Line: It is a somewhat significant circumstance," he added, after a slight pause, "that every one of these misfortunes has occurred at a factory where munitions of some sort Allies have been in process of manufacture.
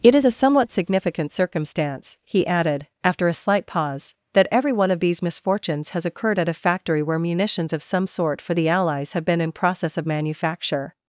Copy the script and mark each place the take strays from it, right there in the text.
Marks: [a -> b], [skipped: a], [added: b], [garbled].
It is a somewhat significant circumstance," he added, after a slight pause, "that every one of these misfortunes has occurred at a factory where munitions of some sort [added: for the] Allies have been in process of manufacture.